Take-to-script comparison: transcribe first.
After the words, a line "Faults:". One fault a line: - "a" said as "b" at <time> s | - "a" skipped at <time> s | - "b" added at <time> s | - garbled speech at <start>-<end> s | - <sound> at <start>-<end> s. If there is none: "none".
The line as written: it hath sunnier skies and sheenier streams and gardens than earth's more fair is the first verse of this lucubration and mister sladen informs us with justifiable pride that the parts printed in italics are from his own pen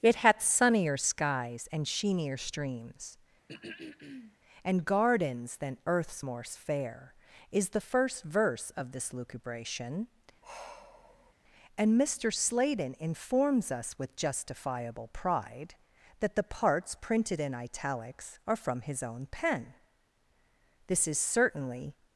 it hath sunnier skies and sheenier streams and gardens than earth's more fair is the first verse of this lucubration and mister sladen informs us with justifiable pride that the parts printed in italics are from his own pen this is certainly
Faults:
- throat clearing at 3.5-4.4 s
- sigh at 10.4-11.3 s
- "this is certainly" added at 20.9 s